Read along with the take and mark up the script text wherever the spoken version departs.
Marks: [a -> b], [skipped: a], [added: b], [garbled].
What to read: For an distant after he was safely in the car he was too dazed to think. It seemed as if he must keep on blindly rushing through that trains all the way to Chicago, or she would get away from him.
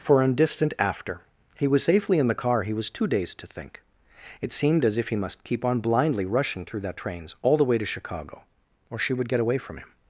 For an distant after he was safely in the car he was too dazed to think. It seemed as if he must keep on blindly rushing through that trains all the way to Chicago, or she would get away from him.